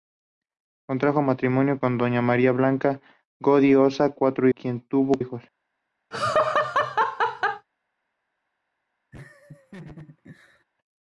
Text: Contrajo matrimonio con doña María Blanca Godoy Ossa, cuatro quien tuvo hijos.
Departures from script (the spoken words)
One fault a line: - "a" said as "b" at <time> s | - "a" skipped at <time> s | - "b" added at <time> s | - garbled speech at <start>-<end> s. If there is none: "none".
none